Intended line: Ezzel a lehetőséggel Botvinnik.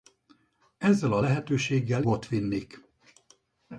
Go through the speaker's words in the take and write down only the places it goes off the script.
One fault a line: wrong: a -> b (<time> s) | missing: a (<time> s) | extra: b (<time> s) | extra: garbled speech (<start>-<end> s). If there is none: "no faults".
no faults